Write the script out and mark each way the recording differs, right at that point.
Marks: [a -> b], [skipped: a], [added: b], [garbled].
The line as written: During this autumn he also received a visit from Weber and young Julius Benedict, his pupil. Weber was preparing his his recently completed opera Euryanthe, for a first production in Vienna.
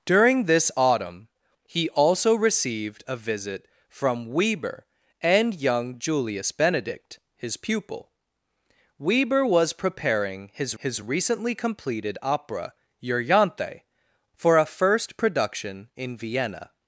During this autumn he also received a visit from Weber and young Julius Benedict, his pupil. Weber was preparing his his recently completed opera Euryanthe, for a first production in Vienna.